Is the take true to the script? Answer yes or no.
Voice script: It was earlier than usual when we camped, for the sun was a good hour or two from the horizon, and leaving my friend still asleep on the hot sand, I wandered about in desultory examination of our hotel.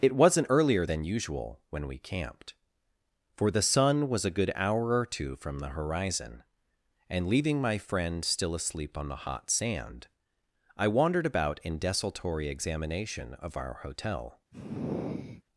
no